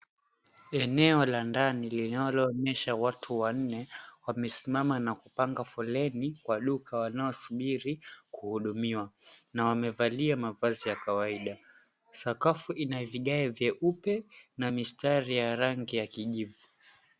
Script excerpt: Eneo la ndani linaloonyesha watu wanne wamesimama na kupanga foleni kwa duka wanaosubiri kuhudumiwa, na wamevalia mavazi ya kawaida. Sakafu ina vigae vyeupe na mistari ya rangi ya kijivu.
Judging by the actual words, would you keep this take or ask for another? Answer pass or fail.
pass